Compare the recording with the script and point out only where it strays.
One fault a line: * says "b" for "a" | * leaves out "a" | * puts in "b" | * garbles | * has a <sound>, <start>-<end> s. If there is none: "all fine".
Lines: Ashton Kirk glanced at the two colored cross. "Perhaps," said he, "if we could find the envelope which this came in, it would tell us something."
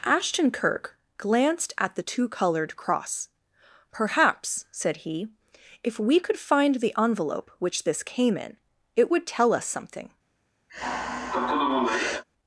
* has a sigh, 10.7-12.2 s